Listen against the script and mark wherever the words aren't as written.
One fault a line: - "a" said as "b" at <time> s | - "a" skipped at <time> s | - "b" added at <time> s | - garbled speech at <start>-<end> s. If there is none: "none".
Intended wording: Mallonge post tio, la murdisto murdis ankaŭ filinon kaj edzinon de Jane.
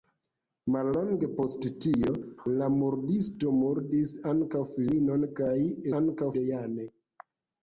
- "edzinon" said as "ankaŭ" at 6.0 s